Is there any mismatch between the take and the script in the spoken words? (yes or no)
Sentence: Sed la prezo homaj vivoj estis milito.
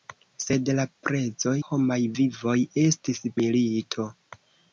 no